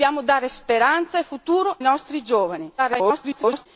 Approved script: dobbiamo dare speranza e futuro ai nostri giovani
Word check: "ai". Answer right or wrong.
wrong